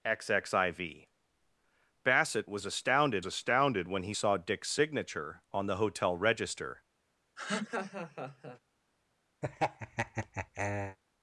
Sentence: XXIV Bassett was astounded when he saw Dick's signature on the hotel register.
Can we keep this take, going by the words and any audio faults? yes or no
no